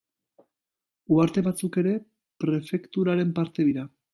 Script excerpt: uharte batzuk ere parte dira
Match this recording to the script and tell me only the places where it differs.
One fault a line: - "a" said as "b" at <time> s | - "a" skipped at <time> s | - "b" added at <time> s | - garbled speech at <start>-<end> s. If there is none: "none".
- "prefekturaren" added at 2.4 s